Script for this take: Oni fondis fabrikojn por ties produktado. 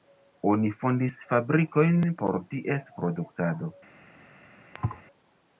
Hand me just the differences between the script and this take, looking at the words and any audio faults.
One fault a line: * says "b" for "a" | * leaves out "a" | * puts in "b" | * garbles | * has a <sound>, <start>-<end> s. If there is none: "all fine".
* has a thud, 4.7-5.0 s